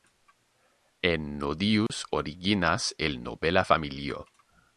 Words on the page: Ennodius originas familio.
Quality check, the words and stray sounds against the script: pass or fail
fail